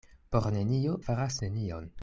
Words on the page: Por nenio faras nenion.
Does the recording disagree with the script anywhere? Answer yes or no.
no